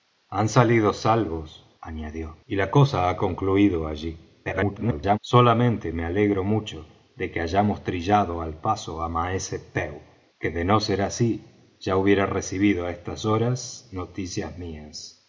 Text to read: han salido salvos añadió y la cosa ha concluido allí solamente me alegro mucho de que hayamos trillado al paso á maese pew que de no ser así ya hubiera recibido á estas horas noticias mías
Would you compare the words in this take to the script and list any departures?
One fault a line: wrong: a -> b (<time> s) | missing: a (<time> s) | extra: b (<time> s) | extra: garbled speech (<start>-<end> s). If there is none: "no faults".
extra: garbled speech (4.4-5.2 s)